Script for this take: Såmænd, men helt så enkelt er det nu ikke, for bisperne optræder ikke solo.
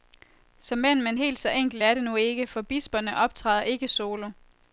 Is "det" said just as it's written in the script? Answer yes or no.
yes